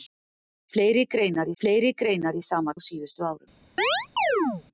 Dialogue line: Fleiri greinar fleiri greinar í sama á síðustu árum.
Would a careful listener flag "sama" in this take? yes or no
no